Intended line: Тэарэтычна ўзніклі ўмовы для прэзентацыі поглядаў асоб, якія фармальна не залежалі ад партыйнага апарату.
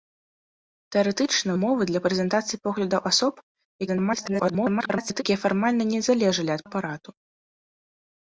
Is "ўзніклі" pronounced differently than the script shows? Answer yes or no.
yes